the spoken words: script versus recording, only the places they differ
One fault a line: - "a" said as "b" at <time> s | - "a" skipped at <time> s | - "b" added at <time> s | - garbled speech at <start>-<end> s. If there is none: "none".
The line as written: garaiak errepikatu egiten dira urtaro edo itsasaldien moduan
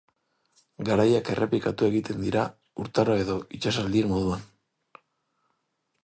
none